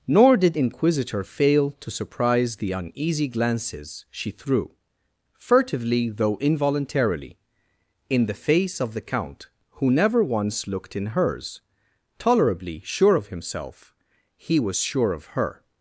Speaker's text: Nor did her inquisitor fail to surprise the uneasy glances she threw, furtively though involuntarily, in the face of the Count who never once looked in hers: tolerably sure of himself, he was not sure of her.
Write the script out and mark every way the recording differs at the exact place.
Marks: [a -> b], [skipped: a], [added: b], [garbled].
Nor did [skipped: her] inquisitor fail to surprise the uneasy glances she threw, furtively though involuntarily, in the face of the Count who never once looked in hers: tolerably sure of himself, he was [skipped: not] sure of her.